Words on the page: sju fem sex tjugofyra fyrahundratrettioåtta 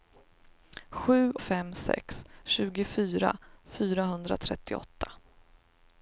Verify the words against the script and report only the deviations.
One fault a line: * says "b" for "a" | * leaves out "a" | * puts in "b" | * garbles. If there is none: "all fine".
all fine